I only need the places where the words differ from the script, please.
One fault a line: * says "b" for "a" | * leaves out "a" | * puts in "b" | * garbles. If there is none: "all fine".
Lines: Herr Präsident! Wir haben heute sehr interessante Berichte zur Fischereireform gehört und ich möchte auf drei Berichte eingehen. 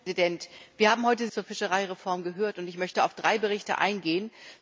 * leaves out "sehr interessante Berichte"